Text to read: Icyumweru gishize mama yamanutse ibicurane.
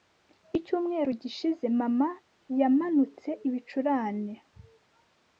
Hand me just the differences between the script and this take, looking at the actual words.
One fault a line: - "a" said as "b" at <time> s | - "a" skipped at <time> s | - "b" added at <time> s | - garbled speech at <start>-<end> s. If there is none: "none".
none